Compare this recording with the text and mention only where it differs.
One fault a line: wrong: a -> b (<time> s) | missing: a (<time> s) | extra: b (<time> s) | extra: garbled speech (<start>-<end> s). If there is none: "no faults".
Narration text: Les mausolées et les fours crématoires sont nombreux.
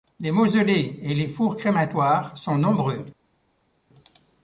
no faults